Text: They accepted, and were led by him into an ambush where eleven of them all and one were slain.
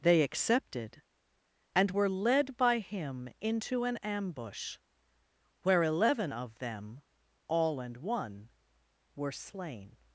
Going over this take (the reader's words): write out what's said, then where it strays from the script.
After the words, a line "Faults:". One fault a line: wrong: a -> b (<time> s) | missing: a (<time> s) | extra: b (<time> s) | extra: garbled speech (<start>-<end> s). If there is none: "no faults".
They accepted, and were led by him into an ambush where eleven of them all and one were slain.
Faults:
no faults